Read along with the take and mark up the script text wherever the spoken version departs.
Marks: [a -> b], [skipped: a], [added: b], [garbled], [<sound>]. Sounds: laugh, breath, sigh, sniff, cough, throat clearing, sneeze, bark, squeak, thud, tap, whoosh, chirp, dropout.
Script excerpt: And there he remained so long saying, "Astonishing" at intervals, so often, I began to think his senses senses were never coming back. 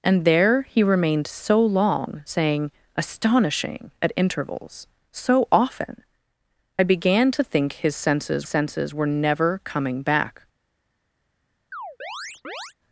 And there he remained so long saying, "Astonishing" at intervals, so often, I began to think his senses senses were never coming back. [chirp]